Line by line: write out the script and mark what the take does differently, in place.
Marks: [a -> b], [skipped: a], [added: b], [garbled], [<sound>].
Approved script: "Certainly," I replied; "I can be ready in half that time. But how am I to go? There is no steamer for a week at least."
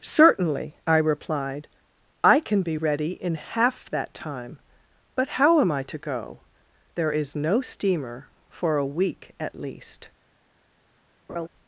"Certainly," I replied; "I can be ready in half that time. But how am I to go? There is no steamer for a week at least." [laugh]